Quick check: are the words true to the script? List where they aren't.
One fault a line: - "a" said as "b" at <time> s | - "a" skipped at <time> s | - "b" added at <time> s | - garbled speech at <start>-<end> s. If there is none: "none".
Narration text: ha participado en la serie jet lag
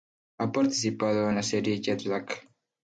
none